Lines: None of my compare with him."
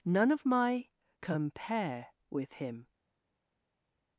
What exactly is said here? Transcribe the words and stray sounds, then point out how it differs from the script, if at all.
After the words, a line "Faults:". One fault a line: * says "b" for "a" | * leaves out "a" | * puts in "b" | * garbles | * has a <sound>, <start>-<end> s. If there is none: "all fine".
None of my compare with him."
Faults:
all fine